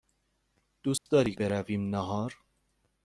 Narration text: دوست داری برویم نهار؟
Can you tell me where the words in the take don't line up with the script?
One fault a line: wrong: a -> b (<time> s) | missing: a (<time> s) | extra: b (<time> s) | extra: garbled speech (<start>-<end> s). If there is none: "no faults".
no faults